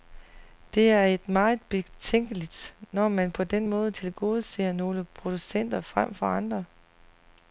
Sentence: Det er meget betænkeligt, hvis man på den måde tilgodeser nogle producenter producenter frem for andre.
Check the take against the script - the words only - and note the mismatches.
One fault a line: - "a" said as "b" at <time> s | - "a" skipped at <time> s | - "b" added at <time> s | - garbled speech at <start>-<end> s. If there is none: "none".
- "hvis" said as "når" at 2.9 s
- "producenter" skipped at 5.8 s